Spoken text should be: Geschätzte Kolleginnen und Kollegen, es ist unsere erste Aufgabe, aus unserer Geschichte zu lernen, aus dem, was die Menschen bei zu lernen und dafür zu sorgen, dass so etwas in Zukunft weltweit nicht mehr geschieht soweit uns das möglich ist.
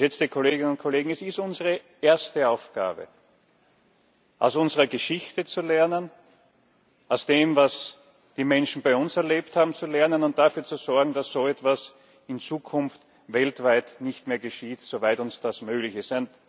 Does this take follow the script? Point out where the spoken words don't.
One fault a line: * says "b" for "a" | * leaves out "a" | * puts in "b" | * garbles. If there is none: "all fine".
* puts in "uns erlebt haben"